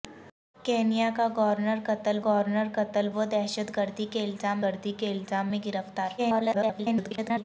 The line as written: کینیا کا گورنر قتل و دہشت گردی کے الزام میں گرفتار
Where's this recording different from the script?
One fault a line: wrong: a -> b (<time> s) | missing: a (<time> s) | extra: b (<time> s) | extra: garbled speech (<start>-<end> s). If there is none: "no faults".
extra: گورنر قتل (2.2 s)
extra: گردی کے الزام (4.6 s)
extra: garbled speech (6.2-7.4 s)